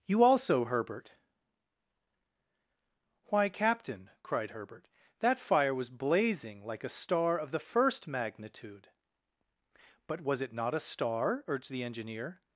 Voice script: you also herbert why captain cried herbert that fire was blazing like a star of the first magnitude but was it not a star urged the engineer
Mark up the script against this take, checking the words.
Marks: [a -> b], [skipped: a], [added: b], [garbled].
you also herbert why captain cried herbert that fire was blazing like a star of the first magnitude but was it not a star urged the engineer